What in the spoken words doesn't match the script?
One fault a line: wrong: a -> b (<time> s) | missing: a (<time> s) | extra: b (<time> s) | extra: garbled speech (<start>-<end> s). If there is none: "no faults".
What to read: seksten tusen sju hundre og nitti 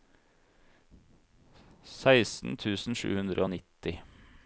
no faults